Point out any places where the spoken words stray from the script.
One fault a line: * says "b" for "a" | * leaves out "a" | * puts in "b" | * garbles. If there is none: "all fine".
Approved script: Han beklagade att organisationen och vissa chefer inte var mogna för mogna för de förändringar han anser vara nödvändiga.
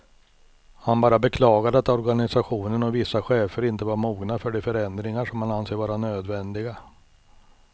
* puts in "bara"
* leaves out "mogna för"
* puts in "som"